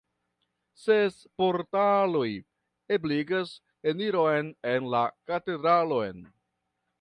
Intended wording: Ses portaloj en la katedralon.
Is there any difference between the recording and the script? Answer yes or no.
yes